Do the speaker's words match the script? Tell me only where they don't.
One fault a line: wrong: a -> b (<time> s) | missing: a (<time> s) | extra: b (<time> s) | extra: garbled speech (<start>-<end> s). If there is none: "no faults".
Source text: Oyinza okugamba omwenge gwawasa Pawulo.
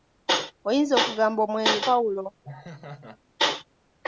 missing: gwawasa (1.8 s)